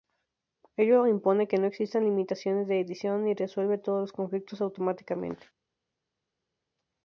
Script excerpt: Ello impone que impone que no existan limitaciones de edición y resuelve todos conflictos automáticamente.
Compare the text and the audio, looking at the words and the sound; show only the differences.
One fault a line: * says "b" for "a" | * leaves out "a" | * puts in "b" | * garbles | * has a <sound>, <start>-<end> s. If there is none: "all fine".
* leaves out "impone que"
* puts in "los"